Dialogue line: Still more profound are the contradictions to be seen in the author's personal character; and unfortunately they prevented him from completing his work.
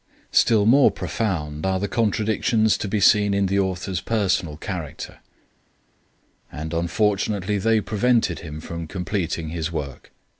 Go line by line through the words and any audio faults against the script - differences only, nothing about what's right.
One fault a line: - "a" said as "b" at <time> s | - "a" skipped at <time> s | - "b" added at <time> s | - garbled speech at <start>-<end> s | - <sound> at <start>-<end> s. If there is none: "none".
none